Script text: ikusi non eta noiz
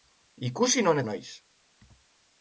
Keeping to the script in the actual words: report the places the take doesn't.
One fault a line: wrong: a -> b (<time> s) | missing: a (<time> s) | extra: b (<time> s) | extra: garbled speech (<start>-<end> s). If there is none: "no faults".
missing: eta (1.0 s)